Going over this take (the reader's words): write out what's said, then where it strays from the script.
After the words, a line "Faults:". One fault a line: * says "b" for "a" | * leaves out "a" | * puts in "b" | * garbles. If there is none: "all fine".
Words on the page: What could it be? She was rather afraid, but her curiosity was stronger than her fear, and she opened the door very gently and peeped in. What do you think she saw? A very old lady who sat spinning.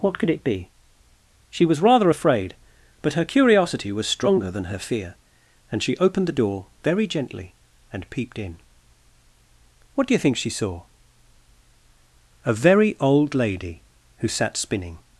What could it be? She was rather afraid, but her curiosity was stronger than her fear, and she opened the door very gently and peeped in. What do you think she saw? A very old lady who sat spinning.
Faults:
all fine